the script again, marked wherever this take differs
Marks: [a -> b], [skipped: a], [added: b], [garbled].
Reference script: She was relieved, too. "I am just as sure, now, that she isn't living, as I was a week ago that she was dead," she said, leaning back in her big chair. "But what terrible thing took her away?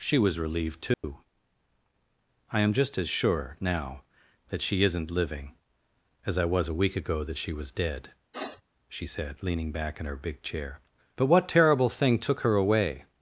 She was relieved, too. "I am just as sure, now, that she isn't living, as I was a week ago that she was dead," she said, leaning back in her big chair. "But what terrible thing took her away?